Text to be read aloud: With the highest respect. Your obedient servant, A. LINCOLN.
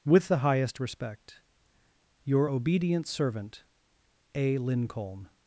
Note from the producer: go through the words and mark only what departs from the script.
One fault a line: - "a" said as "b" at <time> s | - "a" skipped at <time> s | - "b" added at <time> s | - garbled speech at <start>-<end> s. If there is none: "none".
none